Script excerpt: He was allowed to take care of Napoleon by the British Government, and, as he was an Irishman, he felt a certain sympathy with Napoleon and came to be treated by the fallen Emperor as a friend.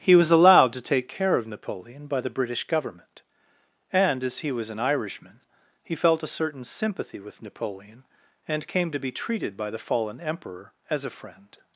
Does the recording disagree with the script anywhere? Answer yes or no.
no